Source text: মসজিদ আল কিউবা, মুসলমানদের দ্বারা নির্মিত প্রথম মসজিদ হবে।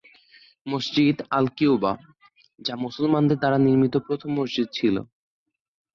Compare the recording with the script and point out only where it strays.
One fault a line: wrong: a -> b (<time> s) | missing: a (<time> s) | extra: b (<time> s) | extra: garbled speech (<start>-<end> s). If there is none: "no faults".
extra: যা (2.6 s)
wrong: হবে -> ছিল (4.7 s)